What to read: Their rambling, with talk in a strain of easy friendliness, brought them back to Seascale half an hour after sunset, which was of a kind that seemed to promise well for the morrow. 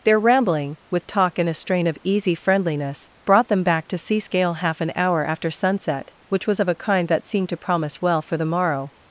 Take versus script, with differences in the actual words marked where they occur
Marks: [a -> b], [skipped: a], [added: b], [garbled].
Their rambling, with talk in a strain of easy friendliness, brought them back to Seascale half an hour after sunset, which was of a kind that seemed to promise well for the morrow.